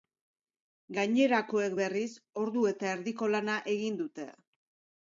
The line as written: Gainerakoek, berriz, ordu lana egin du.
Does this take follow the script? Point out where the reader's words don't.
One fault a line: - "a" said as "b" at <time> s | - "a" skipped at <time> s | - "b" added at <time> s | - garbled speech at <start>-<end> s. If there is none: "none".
- "eta erdiko" added at 2.7 s
- "du" said as "dute" at 4.1 s